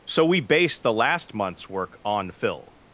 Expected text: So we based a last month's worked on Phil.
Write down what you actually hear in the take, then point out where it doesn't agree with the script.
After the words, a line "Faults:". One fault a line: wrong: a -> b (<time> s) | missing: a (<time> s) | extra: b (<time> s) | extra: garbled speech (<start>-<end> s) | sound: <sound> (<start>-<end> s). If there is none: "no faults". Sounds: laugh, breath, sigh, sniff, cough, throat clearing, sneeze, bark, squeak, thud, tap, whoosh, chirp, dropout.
So we based the last month's work on Phil.
Faults:
wrong: a -> the (0.8 s)
wrong: worked -> work (1.7 s)